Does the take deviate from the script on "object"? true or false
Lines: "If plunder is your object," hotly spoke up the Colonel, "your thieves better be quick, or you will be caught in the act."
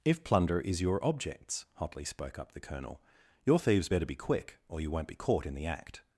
true